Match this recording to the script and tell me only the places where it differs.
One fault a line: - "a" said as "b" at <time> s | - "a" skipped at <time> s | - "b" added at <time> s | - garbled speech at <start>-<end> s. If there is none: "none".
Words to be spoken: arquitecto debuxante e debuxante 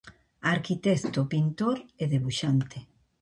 - "debuxante" said as "pintor" at 1.3 s